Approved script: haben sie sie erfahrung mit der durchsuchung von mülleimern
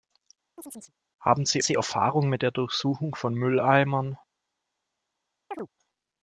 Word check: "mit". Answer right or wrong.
right